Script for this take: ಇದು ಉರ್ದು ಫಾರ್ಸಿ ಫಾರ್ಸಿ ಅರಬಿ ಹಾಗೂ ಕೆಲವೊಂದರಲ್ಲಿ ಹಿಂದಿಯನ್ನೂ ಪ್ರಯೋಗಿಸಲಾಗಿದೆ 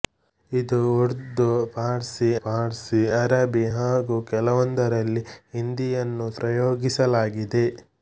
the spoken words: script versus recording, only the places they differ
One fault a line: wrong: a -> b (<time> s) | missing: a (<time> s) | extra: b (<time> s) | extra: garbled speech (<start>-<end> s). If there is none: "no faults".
no faults